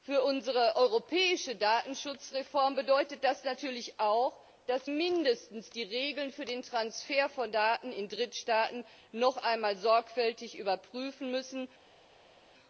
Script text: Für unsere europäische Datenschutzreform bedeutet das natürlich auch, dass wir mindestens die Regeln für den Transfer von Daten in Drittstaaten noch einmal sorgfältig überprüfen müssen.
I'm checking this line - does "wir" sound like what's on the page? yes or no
no